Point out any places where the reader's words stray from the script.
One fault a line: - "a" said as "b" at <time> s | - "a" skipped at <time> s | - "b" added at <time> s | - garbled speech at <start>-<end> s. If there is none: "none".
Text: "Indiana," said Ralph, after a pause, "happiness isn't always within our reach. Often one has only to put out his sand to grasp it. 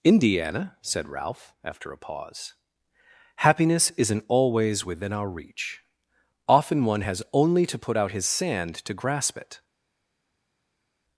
none